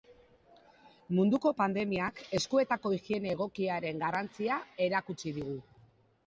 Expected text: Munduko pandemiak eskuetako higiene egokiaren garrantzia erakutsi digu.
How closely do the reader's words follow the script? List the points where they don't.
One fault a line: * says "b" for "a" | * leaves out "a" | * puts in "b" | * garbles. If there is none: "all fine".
all fine